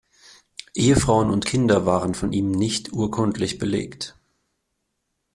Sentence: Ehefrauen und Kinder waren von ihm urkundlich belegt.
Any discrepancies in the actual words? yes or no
yes